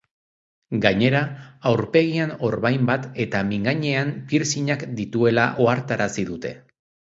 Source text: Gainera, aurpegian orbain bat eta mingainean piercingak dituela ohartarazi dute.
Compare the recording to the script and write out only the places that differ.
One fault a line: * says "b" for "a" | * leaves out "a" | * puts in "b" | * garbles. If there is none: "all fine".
all fine